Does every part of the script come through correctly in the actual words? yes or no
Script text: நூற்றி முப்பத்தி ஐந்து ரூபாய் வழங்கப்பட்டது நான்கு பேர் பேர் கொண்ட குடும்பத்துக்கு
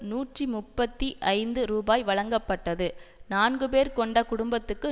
no